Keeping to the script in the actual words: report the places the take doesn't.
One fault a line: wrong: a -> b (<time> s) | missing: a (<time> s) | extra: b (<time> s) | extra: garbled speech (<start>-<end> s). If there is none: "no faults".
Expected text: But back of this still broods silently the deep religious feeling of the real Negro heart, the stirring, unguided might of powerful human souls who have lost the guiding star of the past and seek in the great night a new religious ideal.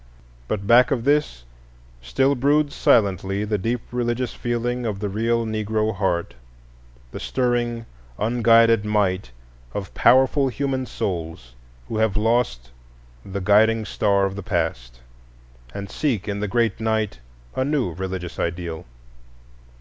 no faults